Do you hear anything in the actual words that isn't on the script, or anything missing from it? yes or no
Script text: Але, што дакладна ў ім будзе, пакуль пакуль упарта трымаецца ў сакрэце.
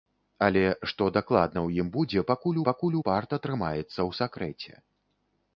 no